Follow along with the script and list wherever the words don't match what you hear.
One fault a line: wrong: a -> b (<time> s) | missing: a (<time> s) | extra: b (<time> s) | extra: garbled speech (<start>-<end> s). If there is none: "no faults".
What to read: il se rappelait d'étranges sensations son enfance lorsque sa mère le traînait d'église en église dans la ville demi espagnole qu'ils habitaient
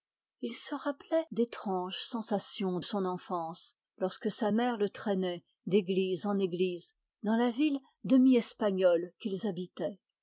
no faults